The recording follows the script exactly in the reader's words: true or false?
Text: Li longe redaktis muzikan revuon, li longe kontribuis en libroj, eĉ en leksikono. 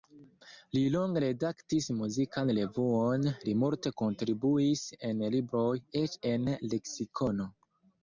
false